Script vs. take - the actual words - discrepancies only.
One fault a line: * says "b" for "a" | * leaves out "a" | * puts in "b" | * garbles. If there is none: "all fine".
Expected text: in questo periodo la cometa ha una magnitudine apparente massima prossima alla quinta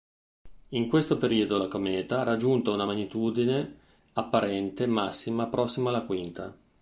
* puts in "raggiunto"